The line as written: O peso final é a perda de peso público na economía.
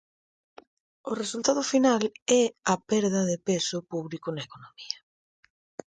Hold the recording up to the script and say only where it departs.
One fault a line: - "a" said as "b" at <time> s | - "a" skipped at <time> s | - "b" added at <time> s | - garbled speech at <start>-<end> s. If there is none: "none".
- "peso" said as "resultado" at 1.2 s